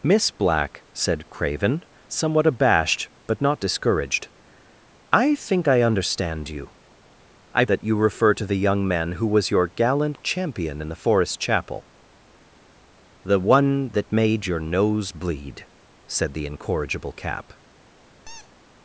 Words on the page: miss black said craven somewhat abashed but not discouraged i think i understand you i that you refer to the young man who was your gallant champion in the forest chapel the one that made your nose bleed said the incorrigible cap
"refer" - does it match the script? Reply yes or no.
yes